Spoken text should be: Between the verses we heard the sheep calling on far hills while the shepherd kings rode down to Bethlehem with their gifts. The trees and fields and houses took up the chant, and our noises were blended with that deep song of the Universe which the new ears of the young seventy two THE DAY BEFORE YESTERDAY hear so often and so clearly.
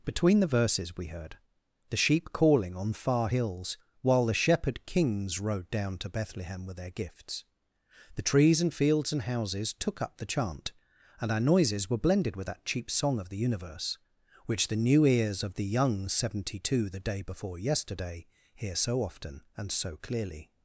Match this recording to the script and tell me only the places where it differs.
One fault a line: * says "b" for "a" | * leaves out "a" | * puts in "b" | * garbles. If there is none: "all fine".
* says "cheap" for "deep"